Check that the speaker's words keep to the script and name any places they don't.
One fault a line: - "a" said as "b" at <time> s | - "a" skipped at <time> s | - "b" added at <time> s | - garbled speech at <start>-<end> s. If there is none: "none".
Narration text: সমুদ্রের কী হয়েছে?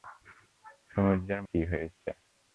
none